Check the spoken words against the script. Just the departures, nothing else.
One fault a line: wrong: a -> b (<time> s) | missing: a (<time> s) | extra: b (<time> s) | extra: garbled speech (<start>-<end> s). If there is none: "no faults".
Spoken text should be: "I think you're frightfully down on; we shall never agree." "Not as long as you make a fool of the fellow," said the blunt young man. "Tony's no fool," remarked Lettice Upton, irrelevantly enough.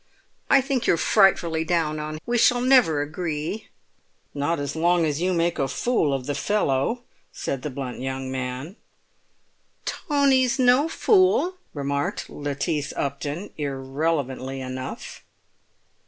no faults